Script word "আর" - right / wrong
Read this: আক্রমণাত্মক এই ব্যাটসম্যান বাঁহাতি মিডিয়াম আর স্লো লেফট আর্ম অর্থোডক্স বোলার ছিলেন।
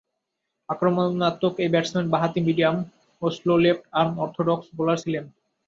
wrong